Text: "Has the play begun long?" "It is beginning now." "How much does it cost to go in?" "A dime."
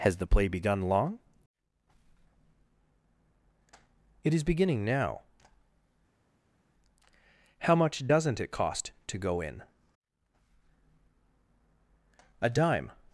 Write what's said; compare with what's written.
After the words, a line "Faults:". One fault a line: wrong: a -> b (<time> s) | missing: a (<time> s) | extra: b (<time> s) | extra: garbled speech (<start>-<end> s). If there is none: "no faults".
"Has the play begun long?" "It is beginning now." "How much doesn't it cost to go in?" "A dime."
Faults:
wrong: does -> doesn't (8.1 s)